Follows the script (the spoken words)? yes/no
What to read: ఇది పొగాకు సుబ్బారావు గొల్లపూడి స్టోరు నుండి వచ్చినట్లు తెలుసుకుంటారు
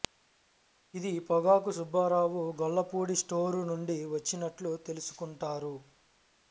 yes